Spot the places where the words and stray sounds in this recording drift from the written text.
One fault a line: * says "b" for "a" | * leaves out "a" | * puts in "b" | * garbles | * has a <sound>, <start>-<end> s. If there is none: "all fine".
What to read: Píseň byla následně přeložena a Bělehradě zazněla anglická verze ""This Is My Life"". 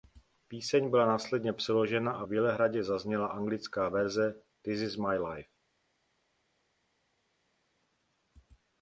all fine